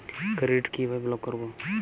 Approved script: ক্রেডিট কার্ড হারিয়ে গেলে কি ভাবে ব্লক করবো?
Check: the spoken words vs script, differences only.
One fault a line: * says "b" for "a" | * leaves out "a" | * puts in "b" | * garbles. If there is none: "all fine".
* leaves out "কার্ড হারিয়ে গেলে"